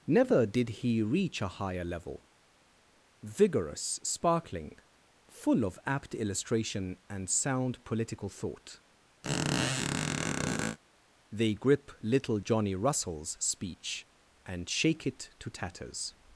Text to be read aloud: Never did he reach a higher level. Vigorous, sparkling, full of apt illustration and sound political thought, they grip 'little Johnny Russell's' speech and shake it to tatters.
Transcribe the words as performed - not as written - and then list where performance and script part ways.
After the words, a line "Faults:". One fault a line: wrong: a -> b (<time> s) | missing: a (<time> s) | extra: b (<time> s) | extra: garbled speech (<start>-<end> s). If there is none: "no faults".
Never did he reach a higher level. Vigorous, sparkling, full of apt illustration and sound political thought, they grip 'little Johnny Russell's' speech and shake it to tatters.
Faults:
no faults